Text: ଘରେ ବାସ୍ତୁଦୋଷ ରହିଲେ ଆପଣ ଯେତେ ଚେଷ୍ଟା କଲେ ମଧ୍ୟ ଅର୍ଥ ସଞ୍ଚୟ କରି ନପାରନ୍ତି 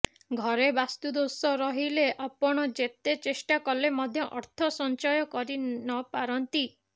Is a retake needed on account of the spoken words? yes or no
no